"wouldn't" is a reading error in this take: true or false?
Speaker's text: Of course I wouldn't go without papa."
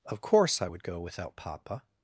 true